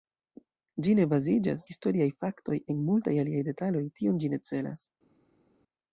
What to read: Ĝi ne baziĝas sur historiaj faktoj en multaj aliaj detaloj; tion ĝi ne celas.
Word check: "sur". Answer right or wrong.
wrong